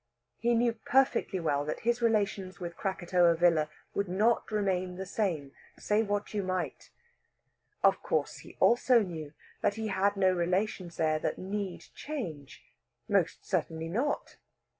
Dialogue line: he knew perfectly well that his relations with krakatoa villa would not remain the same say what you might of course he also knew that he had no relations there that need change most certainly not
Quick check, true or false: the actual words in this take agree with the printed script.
true